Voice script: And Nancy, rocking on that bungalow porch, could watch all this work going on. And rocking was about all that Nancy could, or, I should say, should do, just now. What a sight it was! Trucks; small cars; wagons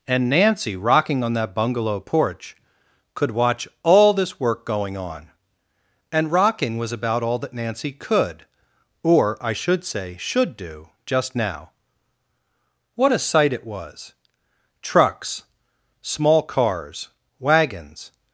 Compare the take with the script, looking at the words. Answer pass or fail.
pass